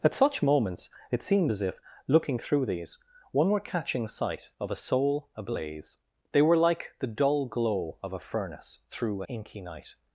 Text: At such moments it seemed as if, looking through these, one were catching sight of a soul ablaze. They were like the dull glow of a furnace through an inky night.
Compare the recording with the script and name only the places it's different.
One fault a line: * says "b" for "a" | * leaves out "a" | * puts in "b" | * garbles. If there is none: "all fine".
* leaves out "an"